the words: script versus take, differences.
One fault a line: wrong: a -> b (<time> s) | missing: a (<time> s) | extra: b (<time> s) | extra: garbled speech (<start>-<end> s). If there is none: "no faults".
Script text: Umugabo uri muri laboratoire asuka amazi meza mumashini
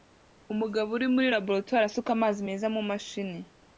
no faults